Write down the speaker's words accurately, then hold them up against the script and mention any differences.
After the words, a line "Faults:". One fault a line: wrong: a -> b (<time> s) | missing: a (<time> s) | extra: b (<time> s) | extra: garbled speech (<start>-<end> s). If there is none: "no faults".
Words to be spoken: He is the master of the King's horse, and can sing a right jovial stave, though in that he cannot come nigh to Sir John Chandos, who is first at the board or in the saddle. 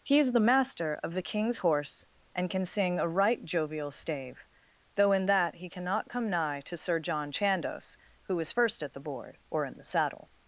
He is the master of the King's horse, and can sing a right jovial stave, though in that he cannot come nigh to Sir John Chandos, who is first at the board or in the saddle.
Faults:
no faults